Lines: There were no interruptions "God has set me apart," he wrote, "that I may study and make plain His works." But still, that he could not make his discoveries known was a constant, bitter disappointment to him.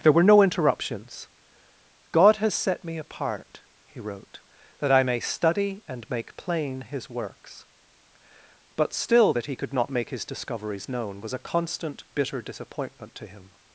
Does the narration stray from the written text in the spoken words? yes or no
no